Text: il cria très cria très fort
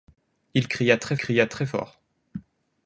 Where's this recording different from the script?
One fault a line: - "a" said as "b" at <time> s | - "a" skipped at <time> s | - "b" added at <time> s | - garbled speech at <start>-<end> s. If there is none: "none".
none